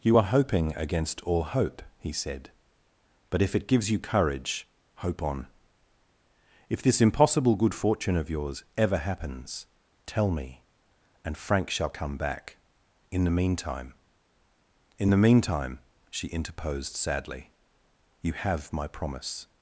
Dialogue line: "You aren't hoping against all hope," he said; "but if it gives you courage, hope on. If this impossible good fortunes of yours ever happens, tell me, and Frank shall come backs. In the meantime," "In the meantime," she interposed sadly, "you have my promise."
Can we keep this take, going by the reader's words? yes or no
no